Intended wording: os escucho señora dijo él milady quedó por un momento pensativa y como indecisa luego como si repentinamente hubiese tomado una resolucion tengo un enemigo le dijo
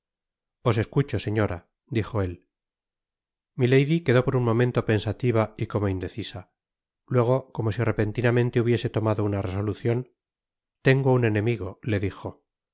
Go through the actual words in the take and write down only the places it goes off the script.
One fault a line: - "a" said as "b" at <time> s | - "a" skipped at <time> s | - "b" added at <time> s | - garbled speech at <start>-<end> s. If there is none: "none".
none